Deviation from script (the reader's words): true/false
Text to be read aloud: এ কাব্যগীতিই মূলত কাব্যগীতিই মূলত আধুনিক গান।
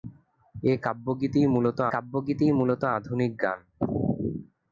false